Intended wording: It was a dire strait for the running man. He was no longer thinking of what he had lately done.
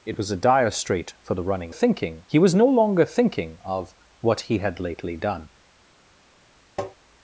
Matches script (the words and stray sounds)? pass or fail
fail